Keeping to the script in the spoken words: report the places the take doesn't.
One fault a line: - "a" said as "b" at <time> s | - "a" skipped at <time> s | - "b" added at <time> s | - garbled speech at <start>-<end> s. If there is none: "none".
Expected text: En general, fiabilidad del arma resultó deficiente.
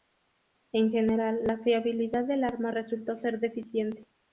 - "la" added at 1.5 s
- "ser" added at 3.2 s